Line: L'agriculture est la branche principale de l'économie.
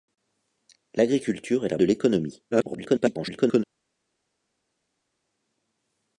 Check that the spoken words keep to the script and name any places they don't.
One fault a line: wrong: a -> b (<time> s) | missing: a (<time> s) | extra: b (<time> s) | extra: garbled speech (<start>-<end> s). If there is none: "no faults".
missing: branche principale (1.8 s)
extra: garbled speech (2.5-3.6 s)